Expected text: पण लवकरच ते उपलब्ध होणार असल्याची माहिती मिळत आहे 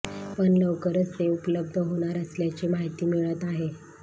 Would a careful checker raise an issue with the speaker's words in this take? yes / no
no